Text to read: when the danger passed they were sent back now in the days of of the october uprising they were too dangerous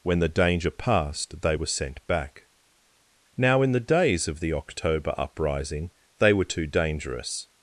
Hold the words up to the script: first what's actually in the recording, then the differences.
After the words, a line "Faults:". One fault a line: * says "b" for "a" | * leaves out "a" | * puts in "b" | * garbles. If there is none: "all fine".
when the danger passed they were sent back now in the days of the october uprising they were too dangerous
Faults:
* leaves out "of"